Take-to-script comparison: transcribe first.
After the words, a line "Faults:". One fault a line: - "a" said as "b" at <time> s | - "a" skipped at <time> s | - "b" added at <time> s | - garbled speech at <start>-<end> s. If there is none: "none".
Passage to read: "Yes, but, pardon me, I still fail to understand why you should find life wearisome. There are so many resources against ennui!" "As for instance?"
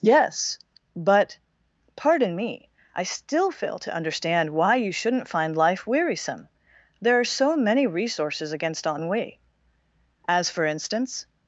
"Yes, but, pardon me, I still fail to understand why you shouldn't find life wearisome. There are so many resources against ennui!" "As for instance?"
Faults:
- "should" said as "shouldn't" at 4.9 s